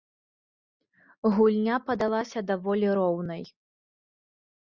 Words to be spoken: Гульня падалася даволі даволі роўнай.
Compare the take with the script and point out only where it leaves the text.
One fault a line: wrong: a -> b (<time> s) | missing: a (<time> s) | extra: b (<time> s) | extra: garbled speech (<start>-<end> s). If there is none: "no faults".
missing: даволі (2.9 s)